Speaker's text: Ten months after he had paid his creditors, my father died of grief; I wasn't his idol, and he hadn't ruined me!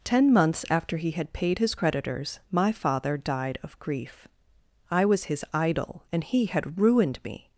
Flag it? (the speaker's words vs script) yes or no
yes